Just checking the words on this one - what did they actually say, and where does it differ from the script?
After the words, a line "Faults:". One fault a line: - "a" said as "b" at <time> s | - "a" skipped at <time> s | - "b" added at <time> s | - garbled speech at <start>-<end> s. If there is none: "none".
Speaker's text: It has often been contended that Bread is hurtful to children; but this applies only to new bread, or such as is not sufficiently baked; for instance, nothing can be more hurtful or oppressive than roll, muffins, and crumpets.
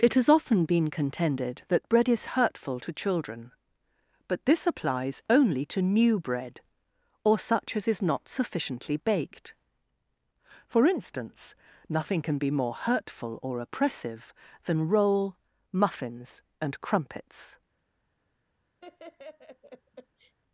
It has often been contended that Bread is hurtful to children; but this applies only to new bread, or such as is not sufficiently baked; for instance, nothing can be more hurtful or oppressive than roll, muffins, and crumpets.
Faults:
none